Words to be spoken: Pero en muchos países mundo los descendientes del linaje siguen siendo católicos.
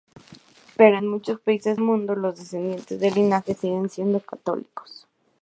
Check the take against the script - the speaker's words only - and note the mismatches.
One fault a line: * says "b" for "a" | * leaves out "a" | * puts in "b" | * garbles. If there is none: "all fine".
all fine